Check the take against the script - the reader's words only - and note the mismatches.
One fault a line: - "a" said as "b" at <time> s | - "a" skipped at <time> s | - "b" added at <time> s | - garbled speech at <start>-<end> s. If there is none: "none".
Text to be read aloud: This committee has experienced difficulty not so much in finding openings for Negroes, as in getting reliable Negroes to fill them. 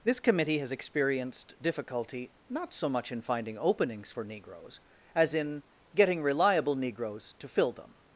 none